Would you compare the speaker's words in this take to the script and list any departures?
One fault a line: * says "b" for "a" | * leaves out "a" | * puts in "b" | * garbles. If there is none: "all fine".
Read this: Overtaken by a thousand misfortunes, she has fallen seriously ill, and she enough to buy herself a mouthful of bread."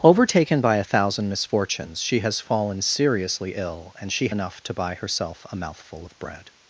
all fine